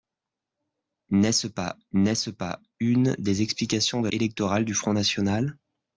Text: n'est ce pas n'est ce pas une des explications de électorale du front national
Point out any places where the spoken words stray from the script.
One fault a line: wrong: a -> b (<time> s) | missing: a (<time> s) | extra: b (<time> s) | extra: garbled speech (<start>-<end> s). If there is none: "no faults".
no faults